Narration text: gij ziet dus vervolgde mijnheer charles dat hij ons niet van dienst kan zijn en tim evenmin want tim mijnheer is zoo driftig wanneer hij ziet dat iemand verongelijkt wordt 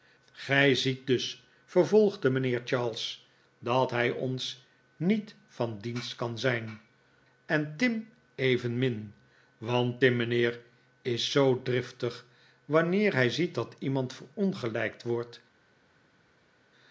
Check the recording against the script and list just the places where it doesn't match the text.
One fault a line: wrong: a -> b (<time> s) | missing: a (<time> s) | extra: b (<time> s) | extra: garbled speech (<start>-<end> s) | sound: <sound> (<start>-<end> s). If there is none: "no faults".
no faults